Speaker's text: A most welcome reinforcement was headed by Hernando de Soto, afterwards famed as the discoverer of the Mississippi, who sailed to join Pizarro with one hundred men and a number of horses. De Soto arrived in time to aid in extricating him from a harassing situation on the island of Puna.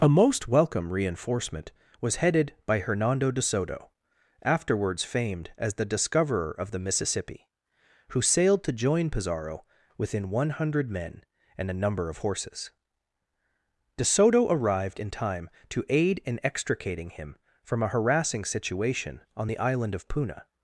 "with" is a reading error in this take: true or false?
true